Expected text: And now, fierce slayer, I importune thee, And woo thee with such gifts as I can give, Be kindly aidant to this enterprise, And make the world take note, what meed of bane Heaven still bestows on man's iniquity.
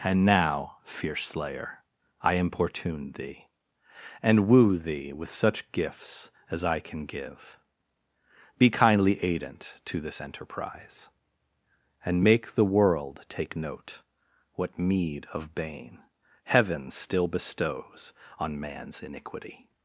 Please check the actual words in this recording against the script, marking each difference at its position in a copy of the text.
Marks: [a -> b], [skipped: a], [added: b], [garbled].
And now, fierce slayer, I importune thee, And woo thee with such gifts as I can give, Be kindly aidant to this enterprise, And make the world take note, what meed of bane Heaven still bestows on man's iniquity.